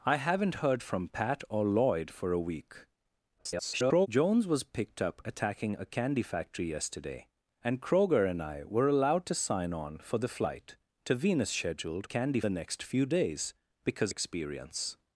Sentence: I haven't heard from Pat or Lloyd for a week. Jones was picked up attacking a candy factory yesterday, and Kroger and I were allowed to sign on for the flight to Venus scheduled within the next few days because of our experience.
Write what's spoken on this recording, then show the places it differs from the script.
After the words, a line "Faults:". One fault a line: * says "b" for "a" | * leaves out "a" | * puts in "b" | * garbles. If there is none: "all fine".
I haven't heard from Pat or Lloyd for a week. [garbled] Jones was picked up attacking a candy factory yesterday, and Kroger and I were allowed to sign on for the flight to Venus scheduled candy the next few days because experience.
Faults:
* garbles
* says "candy" for "within"
* leaves out "of our"